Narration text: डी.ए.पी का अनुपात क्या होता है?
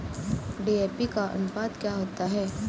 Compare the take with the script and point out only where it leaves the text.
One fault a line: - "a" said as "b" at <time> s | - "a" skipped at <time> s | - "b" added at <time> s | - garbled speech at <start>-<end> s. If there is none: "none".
none